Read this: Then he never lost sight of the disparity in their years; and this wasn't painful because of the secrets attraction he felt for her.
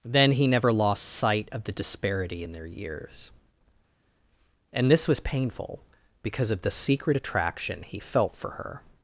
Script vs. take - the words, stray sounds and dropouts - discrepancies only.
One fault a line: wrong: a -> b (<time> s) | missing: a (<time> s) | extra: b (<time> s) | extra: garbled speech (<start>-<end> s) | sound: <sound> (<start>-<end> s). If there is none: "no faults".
wrong: wasn't -> was (5.1 s)
wrong: secrets -> secret (6.7 s)